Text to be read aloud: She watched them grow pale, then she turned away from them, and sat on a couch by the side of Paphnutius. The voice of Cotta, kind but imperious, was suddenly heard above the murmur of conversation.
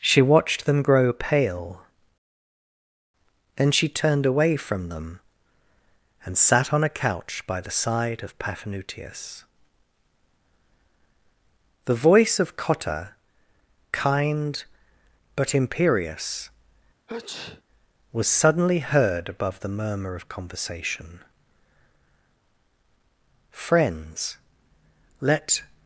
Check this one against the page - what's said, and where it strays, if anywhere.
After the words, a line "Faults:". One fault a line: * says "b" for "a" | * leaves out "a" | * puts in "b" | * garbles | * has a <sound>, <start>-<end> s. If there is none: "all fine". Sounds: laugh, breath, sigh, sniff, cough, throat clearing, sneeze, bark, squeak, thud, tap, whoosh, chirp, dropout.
She watched them grow pale, then she turned away from them, and sat on a couch by the side of Paphnutius. The voice of Cotta, kind but imperious, was suddenly heard above the murmur of conversation. "Friends, let
Faults:
* has a sneeze, 17.1-17.6 s
* puts in "Friends let"